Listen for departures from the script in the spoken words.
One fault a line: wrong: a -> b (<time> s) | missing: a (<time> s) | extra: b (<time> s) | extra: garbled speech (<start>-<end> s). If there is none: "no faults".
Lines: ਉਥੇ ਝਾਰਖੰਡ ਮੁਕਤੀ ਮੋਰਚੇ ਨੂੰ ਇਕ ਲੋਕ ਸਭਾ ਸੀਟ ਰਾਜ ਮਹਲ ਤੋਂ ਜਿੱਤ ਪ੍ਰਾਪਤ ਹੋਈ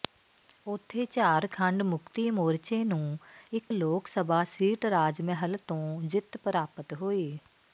no faults